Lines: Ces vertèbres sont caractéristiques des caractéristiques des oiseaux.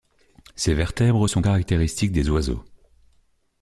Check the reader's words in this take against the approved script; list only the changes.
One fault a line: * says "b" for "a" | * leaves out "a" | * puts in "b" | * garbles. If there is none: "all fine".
* leaves out "caractéristiques des"